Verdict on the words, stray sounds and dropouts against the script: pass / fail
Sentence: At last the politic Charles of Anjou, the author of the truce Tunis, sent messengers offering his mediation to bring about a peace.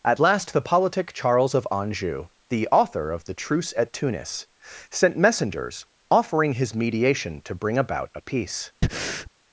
fail